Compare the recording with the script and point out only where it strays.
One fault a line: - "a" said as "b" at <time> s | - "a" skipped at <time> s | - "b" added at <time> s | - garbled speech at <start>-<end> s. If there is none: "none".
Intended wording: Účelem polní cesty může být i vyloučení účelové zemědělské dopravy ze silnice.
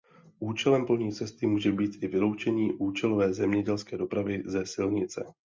none